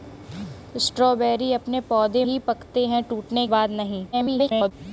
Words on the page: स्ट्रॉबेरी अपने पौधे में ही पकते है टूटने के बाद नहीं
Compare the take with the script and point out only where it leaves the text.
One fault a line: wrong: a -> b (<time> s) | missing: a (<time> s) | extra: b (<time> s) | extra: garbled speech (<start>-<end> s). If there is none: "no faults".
missing: में (2.2 s)
missing: के (3.5 s)
extra: garbled speech (4.1-4.7 s)